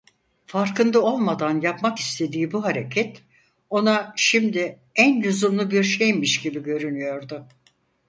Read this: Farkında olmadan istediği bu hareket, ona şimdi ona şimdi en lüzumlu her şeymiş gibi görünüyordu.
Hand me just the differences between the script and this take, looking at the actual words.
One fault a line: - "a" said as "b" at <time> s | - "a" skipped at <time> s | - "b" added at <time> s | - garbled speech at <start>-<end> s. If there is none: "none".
- "yapmak" added at 1.6 s
- "ona şimdi" skipped at 4.8 s
- "her" said as "bir" at 5.7 s